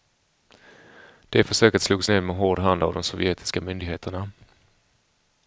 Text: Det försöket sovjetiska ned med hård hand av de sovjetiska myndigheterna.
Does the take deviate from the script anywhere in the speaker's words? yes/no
yes